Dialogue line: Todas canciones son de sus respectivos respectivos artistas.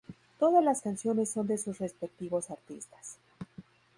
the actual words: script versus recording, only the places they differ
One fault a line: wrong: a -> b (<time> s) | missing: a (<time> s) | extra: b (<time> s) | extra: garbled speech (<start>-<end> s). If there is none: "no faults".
extra: las (0.6 s)
missing: respectivos (2.5 s)